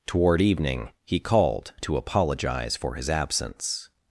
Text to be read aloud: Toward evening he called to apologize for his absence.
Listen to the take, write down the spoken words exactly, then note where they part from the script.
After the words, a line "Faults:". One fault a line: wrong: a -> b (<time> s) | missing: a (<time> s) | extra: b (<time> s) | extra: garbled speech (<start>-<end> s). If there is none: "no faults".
Toward evening he called to apologize for his absence.
Faults:
no faults